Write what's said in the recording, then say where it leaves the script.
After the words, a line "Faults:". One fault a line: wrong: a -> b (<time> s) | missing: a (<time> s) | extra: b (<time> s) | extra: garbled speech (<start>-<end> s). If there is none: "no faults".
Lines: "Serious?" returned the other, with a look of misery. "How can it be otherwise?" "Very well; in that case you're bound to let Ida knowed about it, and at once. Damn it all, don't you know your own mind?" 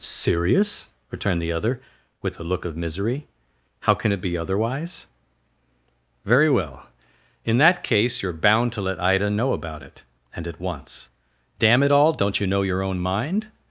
"Serious?" returned the other, with a look of misery. "How can it be otherwise?" "Very well; in that case you're bound to let Ida know about it, and at once. Damn it all, don't you know your own mind?"
Faults:
wrong: knowed -> know (9.3 s)